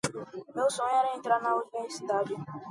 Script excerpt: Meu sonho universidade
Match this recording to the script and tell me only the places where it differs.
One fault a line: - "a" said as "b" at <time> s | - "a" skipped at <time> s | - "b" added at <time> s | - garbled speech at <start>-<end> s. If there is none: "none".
- "era entrar na" added at 0.9 s